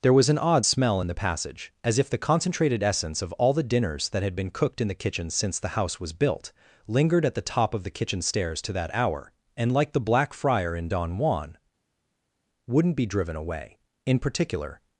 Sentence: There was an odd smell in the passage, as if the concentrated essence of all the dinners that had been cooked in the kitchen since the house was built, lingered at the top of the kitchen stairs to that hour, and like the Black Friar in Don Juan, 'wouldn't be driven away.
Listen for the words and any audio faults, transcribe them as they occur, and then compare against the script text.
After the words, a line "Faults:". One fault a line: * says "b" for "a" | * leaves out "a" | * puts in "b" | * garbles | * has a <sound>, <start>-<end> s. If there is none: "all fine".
There was an odd smell in the passage, as if the concentrated essence of all the dinners that had been cooked in the kitchen since the house was built, lingered at the top of the kitchen stairs to that hour, and like the Black Friar in Don Juan, 'wouldn't be driven away. In particular
Faults:
* puts in "In particular"